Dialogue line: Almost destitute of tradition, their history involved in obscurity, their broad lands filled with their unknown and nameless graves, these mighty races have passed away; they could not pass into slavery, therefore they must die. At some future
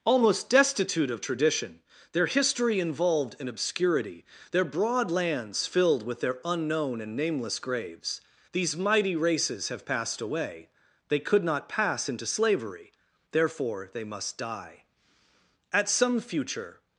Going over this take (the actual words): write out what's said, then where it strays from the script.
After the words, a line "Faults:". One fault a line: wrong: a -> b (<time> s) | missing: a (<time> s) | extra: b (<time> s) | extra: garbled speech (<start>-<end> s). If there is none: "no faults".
Almost destitute of tradition, their history involved in obscurity, their broad lands filled with their unknown and nameless graves, these mighty races have passed away; they could not pass into slavery, therefore they must die. At some future
Faults:
no faults